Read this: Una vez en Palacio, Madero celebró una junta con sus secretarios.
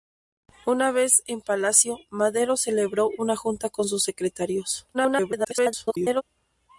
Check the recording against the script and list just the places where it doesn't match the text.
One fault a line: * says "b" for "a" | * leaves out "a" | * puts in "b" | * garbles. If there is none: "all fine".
* garbles